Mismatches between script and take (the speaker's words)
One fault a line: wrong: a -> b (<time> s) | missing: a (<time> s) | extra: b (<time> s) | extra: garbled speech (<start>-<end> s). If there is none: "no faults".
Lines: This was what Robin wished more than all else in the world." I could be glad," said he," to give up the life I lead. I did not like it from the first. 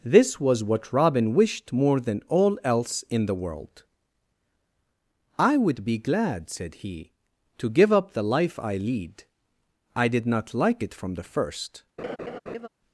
wrong: could -> would (5.6 s)